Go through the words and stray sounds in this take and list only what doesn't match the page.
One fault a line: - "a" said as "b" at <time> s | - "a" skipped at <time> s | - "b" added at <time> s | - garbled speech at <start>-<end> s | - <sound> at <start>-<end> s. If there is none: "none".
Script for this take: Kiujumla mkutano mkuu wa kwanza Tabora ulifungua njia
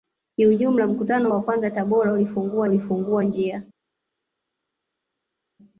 - "mkuu" skipped at 1.3 s
- "ulifungua" added at 2.7 s